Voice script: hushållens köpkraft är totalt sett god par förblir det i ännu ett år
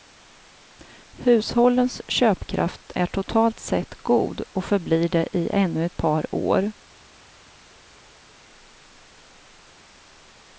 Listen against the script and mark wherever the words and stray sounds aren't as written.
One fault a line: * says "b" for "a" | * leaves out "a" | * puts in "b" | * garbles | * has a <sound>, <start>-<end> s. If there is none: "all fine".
* says "och" for "par"
* puts in "par"